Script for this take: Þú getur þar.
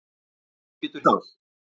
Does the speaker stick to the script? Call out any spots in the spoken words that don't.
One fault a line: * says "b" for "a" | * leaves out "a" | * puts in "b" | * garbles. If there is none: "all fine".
all fine